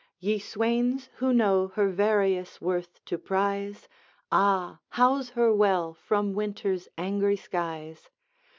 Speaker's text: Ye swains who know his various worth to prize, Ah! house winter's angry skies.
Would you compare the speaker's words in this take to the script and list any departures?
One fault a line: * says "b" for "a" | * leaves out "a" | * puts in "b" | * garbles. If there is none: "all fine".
* says "her" for "his"
* puts in "her well from"